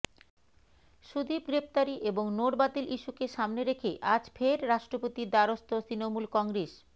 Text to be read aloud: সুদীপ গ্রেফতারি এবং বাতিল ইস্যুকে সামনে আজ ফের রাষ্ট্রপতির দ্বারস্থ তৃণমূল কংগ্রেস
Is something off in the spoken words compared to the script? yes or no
yes